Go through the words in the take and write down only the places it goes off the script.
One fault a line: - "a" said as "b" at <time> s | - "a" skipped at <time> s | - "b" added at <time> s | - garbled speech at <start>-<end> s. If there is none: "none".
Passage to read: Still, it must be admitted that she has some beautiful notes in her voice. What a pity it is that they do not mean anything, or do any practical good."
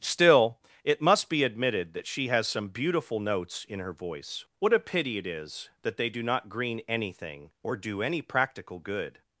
- "mean" said as "green" at 6.5 s